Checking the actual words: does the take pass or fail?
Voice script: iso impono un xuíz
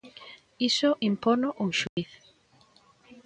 pass